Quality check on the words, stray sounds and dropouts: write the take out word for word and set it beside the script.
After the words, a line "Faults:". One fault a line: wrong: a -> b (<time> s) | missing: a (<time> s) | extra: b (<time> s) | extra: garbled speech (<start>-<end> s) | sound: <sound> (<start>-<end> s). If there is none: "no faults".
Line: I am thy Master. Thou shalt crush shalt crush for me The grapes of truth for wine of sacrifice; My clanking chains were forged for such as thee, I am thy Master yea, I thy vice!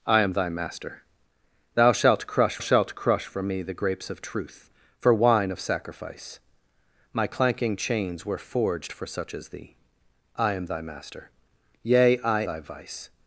I am thy Master. Thou shalt crush shalt crush for me The grapes of truth for wine of sacrifice; My clanking chains were forged for such as thee, I am thy Master yea, I thy vice!
Faults:
no faults